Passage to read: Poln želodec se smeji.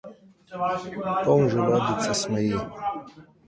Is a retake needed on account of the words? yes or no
no